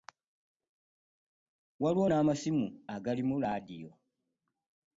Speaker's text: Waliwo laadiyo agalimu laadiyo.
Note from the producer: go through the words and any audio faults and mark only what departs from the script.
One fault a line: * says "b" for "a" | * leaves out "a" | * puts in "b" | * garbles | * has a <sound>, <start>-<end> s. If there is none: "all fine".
* says "n'amasimu" for "laadiyo"